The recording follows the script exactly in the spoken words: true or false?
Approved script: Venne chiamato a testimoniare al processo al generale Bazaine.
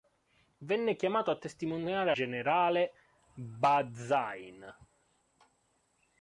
false